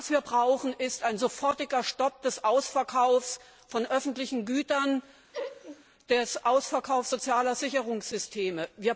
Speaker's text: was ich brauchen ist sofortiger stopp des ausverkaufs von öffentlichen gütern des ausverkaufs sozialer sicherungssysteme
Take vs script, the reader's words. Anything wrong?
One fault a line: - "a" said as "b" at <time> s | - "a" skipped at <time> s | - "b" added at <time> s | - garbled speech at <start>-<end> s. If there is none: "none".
- "ich" said as "wir" at 0.1 s
- "ein" added at 1.0 s